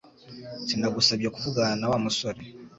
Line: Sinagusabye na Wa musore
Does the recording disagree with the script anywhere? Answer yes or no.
yes